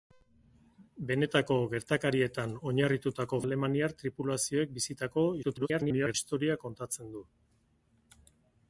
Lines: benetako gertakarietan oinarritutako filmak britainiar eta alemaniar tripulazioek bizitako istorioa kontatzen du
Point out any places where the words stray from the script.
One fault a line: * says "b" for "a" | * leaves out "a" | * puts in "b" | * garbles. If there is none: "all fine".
* leaves out "filmak britainiar eta"
* garbles